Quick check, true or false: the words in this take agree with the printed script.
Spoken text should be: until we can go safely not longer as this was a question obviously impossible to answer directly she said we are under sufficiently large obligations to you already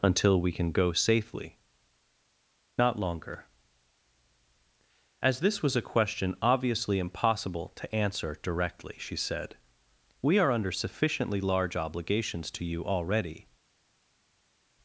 true